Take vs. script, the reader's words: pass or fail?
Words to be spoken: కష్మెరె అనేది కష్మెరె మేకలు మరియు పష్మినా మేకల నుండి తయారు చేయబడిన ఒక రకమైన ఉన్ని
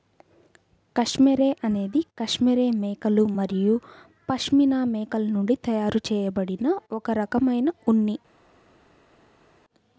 pass